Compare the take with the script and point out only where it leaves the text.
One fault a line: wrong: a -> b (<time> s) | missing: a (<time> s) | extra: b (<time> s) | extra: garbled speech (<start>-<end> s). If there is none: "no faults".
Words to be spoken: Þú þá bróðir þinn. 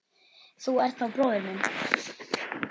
extra: ert (0.8 s)
wrong: þinn -> minn (1.5 s)